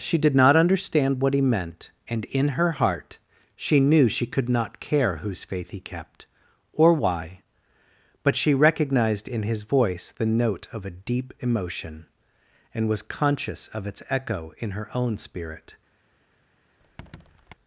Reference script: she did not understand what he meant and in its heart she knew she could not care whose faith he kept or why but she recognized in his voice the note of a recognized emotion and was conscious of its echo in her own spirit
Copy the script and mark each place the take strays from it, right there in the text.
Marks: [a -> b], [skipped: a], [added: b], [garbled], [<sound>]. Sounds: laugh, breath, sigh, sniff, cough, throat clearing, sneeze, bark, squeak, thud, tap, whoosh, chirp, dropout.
she did not understand what he meant and in [its -> her] heart she knew she could not care whose faith he kept or why but she recognized in his voice the note of a [recognized -> deep] emotion and was conscious of its echo in her own spirit [squeak]